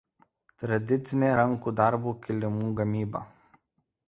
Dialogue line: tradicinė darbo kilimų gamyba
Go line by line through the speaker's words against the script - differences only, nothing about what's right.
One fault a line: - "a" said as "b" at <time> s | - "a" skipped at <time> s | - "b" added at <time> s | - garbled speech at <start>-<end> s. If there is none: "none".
- "rankų" added at 1.4 s